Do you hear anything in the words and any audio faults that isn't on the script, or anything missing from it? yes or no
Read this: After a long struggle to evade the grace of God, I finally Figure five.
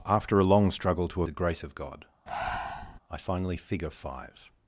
yes